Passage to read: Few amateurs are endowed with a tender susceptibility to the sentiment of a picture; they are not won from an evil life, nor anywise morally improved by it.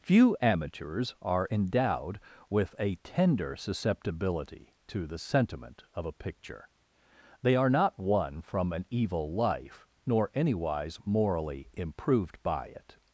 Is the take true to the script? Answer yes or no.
yes